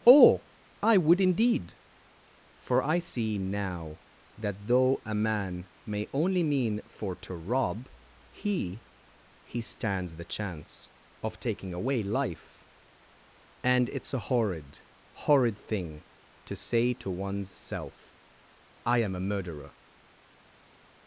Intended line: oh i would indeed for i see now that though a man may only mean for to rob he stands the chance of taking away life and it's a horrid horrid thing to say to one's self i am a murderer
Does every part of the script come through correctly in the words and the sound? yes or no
no